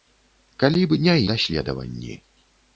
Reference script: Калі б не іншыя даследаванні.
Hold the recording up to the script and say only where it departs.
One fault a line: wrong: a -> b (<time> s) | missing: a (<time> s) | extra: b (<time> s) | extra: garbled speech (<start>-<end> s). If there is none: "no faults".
missing: іншыя (1.2 s)